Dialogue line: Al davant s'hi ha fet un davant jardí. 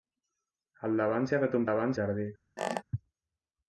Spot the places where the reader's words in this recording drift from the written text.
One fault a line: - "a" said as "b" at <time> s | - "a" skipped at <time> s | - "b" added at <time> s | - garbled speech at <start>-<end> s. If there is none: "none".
none